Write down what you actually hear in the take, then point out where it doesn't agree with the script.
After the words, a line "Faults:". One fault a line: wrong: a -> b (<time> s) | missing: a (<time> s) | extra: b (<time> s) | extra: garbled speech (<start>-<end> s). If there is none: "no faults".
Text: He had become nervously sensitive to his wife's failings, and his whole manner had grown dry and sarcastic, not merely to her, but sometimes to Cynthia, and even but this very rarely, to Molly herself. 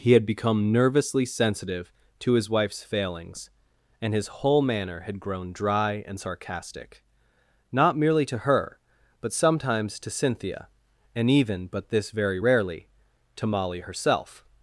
He had become nervously sensitive to his wife's failings, and his whole manner had grown dry and sarcastic, not merely to her, but sometimes to Cynthia, and even but this very rarely, to Molly herself.
Faults:
no faults